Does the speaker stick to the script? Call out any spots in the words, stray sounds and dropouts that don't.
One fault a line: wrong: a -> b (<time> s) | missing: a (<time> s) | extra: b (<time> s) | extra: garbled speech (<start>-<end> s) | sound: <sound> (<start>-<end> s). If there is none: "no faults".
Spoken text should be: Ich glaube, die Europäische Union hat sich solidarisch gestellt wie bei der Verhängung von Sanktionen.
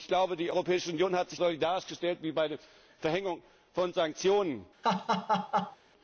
sound: laugh (4.8-5.8 s)